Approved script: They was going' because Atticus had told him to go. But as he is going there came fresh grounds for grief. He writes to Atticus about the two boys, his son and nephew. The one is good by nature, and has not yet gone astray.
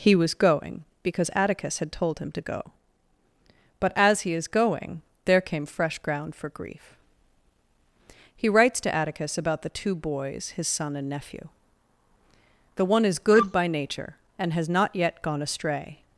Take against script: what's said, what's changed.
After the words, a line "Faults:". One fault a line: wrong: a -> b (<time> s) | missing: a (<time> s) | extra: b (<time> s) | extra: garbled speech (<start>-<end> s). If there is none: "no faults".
He was going' because Atticus had told him to go. But as he is going there came fresh ground for grief. He writes to Atticus about the two boys, his son and nephew. The one is good by nature, and has not yet gone astray.
Faults:
wrong: They -> He (0.0 s)
wrong: grounds -> ground (6.0 s)